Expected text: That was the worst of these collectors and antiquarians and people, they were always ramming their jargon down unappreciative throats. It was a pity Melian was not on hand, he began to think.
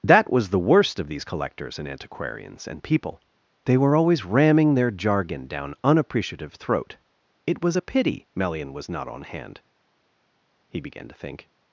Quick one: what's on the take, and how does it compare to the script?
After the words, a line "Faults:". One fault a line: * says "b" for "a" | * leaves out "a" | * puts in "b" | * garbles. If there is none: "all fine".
That was the worst of these collectors and antiquarians and people, they were always ramming their jargon down unappreciative throat. It was a pity Melian was not on hand, he began to think.
Faults:
* says "throat" for "throats"